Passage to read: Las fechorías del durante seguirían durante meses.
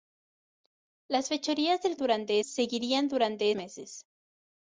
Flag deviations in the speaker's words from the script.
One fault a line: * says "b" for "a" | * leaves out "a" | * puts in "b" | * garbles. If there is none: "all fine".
all fine